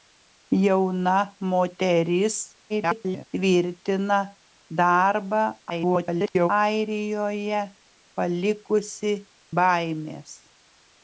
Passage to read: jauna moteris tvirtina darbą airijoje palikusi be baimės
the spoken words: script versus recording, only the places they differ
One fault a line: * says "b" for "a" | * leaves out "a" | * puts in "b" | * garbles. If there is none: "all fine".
* garbles
* garbles
* leaves out "be"